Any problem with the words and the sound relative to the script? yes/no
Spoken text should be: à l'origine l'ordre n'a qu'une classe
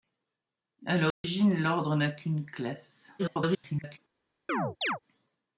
yes